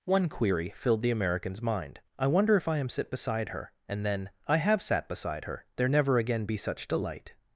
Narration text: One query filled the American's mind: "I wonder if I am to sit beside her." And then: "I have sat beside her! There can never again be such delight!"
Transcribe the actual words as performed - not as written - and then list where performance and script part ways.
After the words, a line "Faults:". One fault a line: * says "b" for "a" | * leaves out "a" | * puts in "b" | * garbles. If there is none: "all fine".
One query filled the American's mind: "I wonder if I am sit beside her." And then: "I have sat beside her! There never again be such delight!"
Faults:
* leaves out "to"
* leaves out "can"